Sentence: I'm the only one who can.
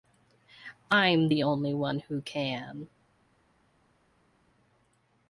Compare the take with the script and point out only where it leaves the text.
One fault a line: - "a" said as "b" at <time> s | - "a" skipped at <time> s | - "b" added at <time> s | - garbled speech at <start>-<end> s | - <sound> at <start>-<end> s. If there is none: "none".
none